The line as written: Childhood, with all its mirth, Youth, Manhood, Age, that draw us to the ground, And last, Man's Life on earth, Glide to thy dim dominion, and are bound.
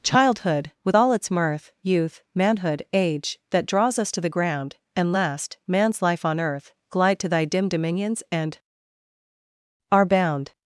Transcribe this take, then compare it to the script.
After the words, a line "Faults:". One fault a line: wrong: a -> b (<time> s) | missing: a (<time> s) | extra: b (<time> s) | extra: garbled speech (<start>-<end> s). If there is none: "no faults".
Childhood, with all its mirth, Youth, Manhood, Age, that draws us to the ground, And last, Man's Life on earth, Glide to thy dim dominions, and are bound.
Faults:
wrong: draw -> draws (3.7 s)
wrong: dominion -> dominions (7.7 s)